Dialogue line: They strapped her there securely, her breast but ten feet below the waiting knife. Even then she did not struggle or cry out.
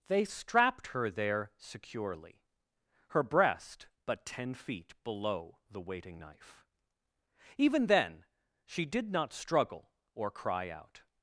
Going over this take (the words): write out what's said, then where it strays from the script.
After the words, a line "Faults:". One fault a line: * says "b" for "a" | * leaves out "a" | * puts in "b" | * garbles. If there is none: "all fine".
They strapped her there securely, her breast but ten feet below the waiting knife. Even then she did not struggle or cry out.
Faults:
all fine